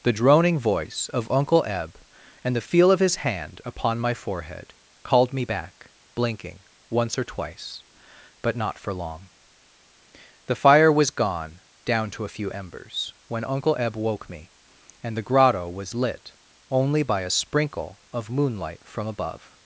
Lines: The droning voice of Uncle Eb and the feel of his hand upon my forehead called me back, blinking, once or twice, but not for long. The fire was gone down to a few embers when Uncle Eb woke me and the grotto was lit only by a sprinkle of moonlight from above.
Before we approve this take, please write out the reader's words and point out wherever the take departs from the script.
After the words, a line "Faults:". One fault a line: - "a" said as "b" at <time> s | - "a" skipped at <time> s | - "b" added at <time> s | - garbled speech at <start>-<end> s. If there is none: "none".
The droning voice of Uncle Eb and the feel of his hand upon my forehead called me back, blinking, once or twice, but not for long. The fire was gone down to a few embers when Uncle Eb woke me and the grotto was lit only by a sprinkle of moonlight from above.
Faults:
none